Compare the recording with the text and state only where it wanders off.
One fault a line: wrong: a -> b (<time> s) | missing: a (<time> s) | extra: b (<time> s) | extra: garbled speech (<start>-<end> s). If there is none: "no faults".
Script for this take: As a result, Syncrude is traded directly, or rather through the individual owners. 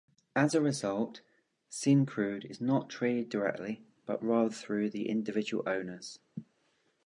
extra: not (2.6 s)
wrong: or -> but (4.1 s)